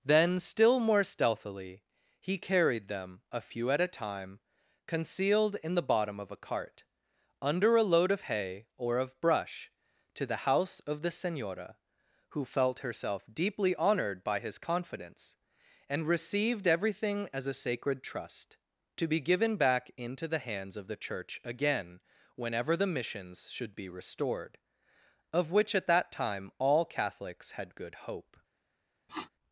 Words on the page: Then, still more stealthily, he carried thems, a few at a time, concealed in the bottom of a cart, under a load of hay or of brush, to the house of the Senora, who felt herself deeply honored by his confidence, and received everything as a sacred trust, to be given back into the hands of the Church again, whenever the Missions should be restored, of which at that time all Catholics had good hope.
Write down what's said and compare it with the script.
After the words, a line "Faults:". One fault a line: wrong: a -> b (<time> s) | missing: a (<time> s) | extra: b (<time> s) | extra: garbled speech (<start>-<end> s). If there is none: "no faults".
Then, still more stealthily, he carried them, a few at a time, concealed in the bottom of a cart, under a load of hay or of brush, to the house of the Senora, who felt herself deeply honored by his confidence, and received everything as a sacred trust, to be given back into the hands of the Church again, whenever the Missions should be restored, of which at that time all Catholics had good hope.
Faults:
wrong: thems -> them (2.9 s)